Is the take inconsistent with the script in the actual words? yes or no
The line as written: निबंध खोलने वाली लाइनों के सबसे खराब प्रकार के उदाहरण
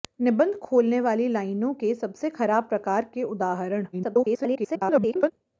yes